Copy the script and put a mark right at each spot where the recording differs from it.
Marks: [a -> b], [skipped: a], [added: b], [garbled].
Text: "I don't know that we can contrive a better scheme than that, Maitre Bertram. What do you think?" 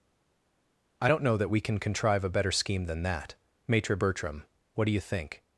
"I don't know that we can contrive a better scheme than that, Maitre Bertram. What do you think?"